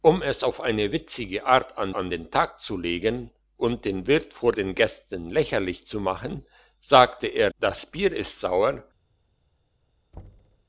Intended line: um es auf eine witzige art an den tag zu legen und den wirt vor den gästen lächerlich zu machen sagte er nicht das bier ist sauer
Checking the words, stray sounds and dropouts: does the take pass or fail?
fail